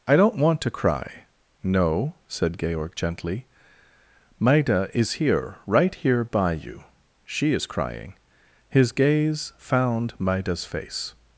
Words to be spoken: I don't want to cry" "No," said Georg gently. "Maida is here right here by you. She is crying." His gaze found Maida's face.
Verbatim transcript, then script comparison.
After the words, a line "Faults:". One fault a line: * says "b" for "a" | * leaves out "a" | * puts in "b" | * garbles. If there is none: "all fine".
I don't want to cry" "No," said Georg gently. "Maida is here right here by you. She is crying." His gaze found Maida's face.
Faults:
all fine